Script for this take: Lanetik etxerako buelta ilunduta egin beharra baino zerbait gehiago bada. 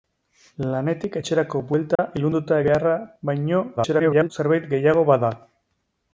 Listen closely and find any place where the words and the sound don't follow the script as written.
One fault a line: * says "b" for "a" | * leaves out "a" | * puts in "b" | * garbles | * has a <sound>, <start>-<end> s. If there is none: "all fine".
* has a dropout, 2.0-2.0 s
* leaves out "egin"
* garbles